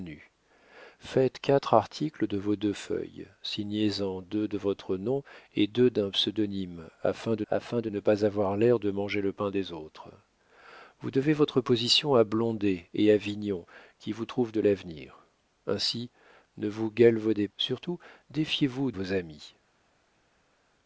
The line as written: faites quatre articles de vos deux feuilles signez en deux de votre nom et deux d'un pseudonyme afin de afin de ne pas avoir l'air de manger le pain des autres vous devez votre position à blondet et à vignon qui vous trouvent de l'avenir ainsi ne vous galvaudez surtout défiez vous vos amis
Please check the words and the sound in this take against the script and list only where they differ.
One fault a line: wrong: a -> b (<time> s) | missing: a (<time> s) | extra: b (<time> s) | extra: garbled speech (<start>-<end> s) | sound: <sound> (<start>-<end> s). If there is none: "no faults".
no faults